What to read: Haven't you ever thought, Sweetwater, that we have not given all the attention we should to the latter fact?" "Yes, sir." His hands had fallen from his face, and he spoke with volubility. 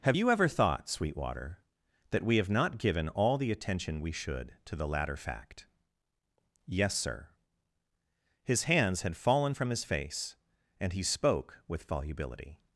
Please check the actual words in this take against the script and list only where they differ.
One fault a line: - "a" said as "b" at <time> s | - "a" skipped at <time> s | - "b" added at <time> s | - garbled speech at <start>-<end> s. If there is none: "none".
- "Haven't" said as "Have" at 0.0 s